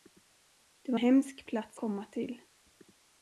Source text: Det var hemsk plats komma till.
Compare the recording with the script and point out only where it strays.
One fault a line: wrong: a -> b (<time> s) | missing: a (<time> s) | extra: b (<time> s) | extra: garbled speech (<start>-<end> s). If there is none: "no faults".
no faults